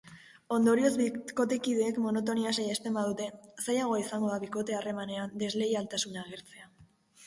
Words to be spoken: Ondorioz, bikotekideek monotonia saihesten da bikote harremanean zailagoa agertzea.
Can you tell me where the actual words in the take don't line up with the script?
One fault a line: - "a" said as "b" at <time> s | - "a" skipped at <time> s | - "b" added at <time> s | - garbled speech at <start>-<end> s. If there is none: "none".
- "badute zailagoa izango" added at 3.0 s
- "zailagoa" said as "desleialtasuna" at 5.5 s